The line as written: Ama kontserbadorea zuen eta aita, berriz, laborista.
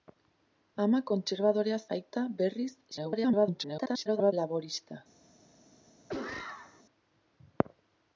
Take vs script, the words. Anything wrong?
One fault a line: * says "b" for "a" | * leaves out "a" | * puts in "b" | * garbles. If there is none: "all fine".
* leaves out "zuen eta"
* garbles